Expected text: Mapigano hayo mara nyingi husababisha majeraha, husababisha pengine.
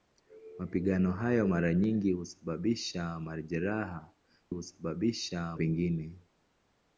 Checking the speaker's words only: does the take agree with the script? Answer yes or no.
yes